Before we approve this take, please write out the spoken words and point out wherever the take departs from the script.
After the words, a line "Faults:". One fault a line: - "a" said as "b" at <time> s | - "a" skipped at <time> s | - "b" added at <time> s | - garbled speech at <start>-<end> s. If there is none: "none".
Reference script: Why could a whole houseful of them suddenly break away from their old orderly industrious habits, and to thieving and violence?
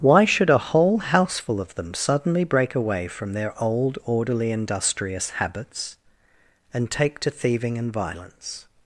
Why should a whole houseful of them suddenly break away from their old orderly industrious habits, and take to thieving and violence?
Faults:
- "could" said as "should" at 0.2 s
- "take" added at 6.9 s